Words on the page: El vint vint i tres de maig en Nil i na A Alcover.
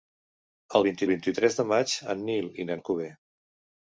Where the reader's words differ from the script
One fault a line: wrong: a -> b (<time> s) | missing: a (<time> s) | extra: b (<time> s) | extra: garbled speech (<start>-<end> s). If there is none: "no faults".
no faults